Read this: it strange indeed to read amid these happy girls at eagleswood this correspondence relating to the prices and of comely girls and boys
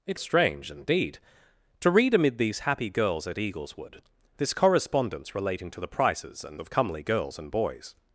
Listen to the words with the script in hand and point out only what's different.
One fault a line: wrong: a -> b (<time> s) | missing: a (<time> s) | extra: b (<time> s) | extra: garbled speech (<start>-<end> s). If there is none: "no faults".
no faults